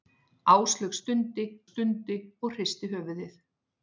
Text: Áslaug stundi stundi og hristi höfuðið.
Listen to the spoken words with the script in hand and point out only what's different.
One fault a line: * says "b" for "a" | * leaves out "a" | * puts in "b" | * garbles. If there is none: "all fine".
all fine